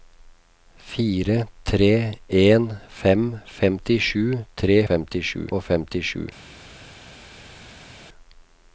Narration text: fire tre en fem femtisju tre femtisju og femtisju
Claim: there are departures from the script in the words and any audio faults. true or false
false